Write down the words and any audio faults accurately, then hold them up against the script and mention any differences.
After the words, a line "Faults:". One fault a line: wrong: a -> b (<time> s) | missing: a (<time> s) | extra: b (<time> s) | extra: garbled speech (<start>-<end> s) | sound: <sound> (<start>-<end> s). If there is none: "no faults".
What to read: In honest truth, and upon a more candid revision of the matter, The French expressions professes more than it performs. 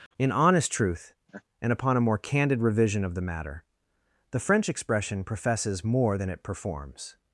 In honest truth, and upon a more candid revision of the matter, The French expression professes more than it performs.
Faults:
sound: laugh (1.3-1.4 s)
wrong: expressions -> expression (4.7 s)